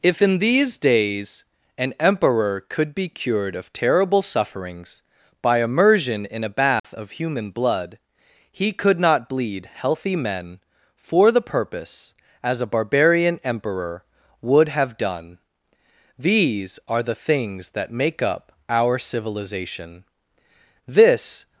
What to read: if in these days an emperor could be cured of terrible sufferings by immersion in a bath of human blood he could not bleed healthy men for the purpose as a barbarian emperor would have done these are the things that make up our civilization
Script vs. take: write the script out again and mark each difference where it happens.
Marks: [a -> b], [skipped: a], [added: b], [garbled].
if in these days an emperor could be cured of terrible sufferings by immersion in a bath of human blood he could not bleed healthy men for the purpose as a barbarian emperor would have done these are the things that make up our civilization [added: this]